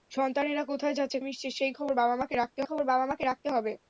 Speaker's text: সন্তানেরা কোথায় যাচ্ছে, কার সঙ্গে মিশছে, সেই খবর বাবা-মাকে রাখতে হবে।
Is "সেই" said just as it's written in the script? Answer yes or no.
no